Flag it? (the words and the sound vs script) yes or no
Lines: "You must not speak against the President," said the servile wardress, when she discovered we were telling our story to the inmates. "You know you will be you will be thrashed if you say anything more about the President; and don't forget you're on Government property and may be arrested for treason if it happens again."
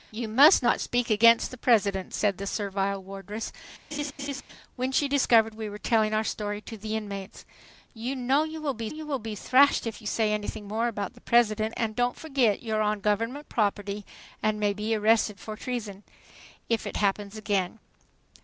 yes